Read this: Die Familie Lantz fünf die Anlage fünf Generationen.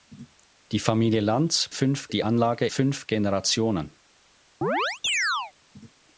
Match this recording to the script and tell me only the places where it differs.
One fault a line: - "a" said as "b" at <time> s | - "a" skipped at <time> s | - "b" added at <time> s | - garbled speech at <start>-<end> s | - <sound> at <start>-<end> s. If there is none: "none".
- chirp at 4.6-5.5 s